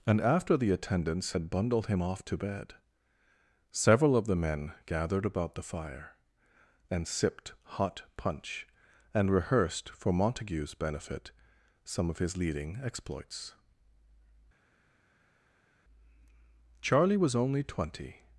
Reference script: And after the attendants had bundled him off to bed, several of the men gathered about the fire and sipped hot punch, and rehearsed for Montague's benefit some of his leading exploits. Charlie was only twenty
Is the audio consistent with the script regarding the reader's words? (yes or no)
yes